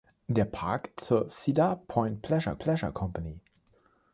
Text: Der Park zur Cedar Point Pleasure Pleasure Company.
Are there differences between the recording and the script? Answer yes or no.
no